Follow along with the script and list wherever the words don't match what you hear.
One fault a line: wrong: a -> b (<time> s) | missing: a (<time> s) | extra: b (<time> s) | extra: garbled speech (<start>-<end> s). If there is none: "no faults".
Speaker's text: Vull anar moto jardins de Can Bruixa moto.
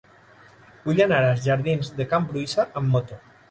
wrong: moto -> als (1.3 s)
extra: amb (2.8 s)